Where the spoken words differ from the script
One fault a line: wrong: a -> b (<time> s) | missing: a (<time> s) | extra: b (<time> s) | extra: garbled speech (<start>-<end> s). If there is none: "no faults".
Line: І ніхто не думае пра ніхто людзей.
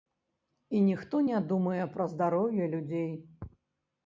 wrong: ніхто -> здароўе (2.1 s)